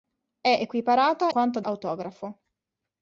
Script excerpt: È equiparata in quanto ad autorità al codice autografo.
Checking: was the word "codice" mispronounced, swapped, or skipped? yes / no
yes